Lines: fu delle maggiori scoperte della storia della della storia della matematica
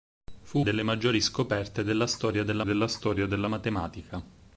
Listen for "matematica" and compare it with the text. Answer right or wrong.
right